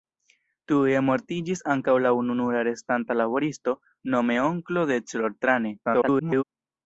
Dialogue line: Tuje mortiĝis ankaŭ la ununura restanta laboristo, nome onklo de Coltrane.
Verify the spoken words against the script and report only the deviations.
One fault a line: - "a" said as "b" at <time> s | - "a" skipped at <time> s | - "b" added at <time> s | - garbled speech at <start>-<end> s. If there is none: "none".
- garbled speech at 5.8-6.4 s